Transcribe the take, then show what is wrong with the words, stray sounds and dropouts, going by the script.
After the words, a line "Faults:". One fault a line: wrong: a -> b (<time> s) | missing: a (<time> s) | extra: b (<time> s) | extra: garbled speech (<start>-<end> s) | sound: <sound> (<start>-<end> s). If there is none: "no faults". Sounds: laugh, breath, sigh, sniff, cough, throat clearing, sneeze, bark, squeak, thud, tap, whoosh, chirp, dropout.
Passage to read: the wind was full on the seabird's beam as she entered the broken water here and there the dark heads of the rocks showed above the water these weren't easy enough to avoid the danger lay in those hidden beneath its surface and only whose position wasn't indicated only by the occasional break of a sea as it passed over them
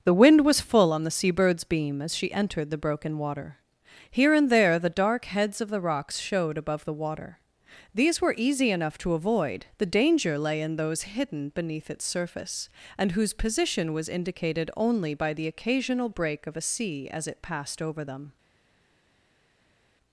the wind was full on the seabird's beam as she entered the broken water here and there the dark heads of the rocks showed above the water these were easy enough to avoid the danger lay in those hidden beneath its surface and whose position was indicated only by the occasional break of a sea as it passed over them
Faults:
wrong: weren't -> were (8.2 s)
missing: only (13.1 s)
wrong: wasn't -> was (13.9 s)